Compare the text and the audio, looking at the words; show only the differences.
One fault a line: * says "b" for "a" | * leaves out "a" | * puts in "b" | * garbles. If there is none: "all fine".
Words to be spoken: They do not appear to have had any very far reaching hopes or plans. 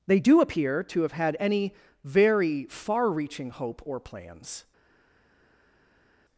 * leaves out "not"
* says "hope" for "hopes"